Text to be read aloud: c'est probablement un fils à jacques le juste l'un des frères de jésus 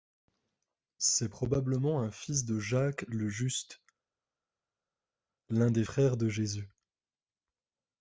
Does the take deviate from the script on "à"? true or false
true